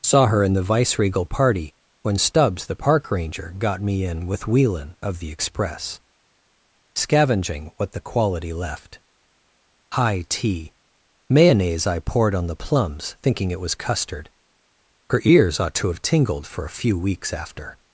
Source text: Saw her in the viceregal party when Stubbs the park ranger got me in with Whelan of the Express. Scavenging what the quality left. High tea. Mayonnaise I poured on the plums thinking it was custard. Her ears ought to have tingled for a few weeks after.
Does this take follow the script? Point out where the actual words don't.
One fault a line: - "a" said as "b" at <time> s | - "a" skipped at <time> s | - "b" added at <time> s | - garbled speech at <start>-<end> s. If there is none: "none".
none